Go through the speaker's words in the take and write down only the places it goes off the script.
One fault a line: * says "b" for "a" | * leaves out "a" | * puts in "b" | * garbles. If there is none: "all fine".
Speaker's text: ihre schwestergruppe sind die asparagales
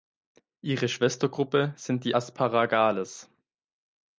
all fine